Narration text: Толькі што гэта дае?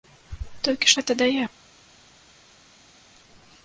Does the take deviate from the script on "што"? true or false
true